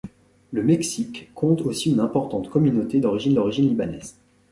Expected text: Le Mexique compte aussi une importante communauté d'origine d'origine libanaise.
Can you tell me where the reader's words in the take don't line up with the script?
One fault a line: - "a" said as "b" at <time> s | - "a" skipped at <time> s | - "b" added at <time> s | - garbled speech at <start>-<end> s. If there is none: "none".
none